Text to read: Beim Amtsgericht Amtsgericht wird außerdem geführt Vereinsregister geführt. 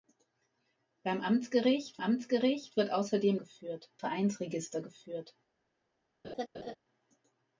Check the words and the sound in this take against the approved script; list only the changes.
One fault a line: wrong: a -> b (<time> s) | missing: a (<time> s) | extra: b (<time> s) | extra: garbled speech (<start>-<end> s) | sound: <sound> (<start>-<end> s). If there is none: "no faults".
sound: laugh (6.2-6.8 s)